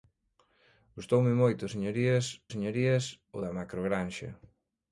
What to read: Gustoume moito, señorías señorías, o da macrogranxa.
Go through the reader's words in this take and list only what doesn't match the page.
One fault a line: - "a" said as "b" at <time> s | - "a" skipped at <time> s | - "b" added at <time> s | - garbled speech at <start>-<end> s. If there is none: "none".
none